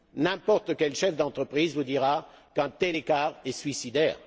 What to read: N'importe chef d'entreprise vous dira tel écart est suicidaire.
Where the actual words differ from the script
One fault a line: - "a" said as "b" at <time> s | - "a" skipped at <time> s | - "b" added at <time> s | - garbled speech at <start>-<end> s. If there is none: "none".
- "quel" added at 0.8 s
- "qu'un" added at 2.5 s